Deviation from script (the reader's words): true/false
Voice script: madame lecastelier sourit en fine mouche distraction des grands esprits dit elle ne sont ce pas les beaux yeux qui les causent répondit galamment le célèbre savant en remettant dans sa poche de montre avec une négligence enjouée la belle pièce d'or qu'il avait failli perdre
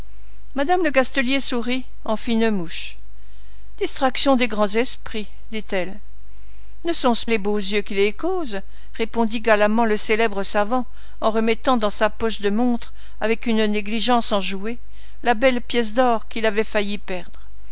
true